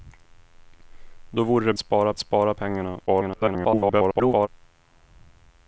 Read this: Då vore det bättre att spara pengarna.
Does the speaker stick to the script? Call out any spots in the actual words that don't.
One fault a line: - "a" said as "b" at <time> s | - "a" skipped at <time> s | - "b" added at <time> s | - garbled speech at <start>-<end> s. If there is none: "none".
- "bättre" said as "spara" at 1.8 s
- garbled speech at 3.1-4.5 s